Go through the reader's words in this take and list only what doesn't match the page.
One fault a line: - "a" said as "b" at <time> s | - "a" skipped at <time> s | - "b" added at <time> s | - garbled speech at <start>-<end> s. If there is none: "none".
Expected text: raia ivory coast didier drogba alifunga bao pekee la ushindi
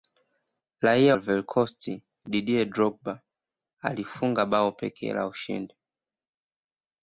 none